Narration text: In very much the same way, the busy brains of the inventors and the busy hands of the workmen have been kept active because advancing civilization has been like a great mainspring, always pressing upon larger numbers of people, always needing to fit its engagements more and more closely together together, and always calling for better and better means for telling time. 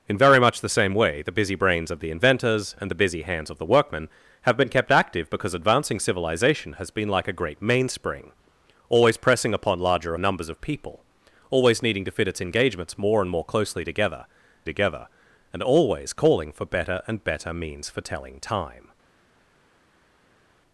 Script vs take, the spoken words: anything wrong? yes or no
no